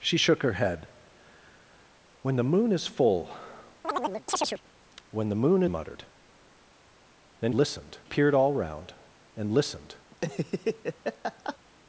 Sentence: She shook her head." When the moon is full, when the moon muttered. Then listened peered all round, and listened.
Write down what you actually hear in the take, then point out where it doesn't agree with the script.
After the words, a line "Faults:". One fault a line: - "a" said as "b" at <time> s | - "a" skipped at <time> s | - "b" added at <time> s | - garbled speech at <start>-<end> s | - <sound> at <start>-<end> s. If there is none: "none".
She shook her head." When the moon is full, when the moon muttered. Then listened peered all round, and listened.
Faults:
- chirp at 3.8-4.6 s
- laugh at 10.1-11.6 s